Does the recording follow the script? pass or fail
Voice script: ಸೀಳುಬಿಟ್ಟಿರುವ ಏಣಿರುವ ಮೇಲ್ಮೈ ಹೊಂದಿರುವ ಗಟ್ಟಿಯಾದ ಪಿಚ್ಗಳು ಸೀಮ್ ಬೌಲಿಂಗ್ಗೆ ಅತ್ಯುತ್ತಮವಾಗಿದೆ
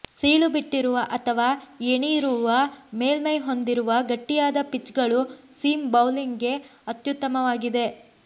fail